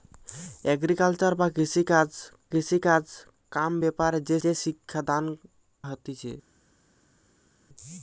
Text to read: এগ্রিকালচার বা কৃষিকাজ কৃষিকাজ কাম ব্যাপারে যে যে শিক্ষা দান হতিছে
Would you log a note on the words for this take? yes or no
no